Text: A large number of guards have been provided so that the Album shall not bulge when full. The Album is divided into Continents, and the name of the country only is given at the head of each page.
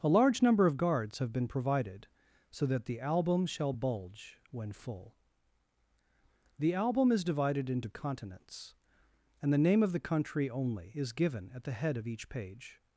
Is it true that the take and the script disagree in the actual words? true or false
true